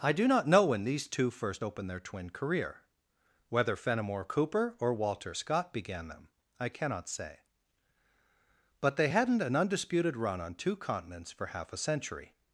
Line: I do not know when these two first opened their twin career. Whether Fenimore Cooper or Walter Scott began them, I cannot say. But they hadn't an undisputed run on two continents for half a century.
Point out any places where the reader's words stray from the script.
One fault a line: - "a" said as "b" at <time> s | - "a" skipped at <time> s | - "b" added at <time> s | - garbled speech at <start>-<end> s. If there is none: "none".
none